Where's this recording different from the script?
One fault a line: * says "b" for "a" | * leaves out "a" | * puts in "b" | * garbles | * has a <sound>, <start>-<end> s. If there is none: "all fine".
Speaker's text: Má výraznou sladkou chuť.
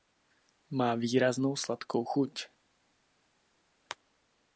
all fine